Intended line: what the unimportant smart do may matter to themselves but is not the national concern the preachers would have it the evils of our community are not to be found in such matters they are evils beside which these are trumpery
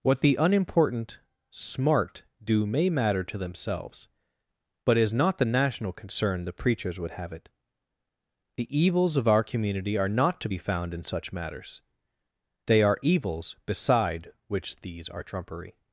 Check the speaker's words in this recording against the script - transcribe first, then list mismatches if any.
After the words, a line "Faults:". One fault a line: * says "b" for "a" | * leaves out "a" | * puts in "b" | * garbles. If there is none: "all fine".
what the unimportant smart do may matter to themselves but is not the national concern the preachers would have it the evils of our community are not to be found in such matters they are evils beside which these are trumpery
Faults:
all fine